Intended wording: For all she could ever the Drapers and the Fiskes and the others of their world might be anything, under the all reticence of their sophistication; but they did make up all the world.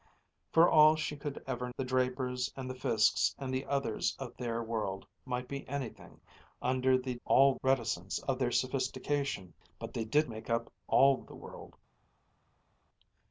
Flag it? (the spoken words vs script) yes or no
no